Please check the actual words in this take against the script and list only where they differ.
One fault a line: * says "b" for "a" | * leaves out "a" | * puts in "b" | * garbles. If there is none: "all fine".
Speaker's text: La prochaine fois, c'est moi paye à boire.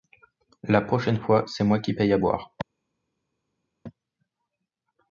* puts in "qui"